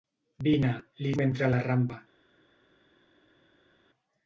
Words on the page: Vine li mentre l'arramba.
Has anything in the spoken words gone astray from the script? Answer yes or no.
no